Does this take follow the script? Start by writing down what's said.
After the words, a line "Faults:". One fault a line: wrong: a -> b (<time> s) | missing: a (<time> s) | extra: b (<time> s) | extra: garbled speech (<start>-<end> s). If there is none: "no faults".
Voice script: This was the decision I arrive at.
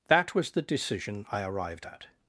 That was the decision I arrived at.
Faults:
wrong: This -> That (0.1 s)
wrong: arrive -> arrived (1.4 s)